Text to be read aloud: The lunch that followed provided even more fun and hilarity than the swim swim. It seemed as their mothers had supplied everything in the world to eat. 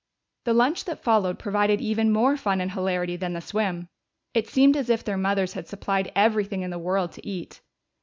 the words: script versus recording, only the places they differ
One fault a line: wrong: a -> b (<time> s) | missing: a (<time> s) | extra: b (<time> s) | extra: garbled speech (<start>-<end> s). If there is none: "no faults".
missing: swim (3.9 s)
extra: if (4.9 s)